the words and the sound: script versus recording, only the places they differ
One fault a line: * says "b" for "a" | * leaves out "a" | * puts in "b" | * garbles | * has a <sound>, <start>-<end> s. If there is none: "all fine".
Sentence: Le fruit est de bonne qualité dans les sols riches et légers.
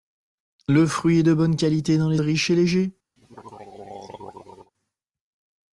* leaves out "sols"
* has a throat clearing, 3.2-4.7 s